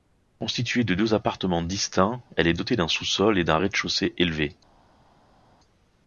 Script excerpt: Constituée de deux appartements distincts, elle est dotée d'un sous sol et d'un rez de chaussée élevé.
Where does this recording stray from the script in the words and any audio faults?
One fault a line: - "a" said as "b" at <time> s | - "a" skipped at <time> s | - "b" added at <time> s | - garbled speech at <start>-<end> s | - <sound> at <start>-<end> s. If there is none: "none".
none